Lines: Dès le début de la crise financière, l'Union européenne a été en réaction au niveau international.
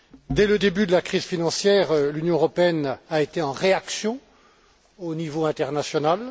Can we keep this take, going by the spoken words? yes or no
yes